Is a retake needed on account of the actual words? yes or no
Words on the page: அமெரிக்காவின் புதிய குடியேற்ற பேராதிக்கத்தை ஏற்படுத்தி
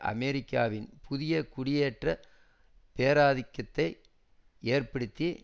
no